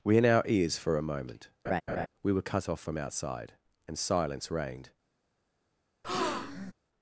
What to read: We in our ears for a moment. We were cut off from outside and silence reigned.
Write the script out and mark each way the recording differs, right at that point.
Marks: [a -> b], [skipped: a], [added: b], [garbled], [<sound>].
We in our ears for a moment. [laugh] We were cut off from outside and silence reigned. [breath]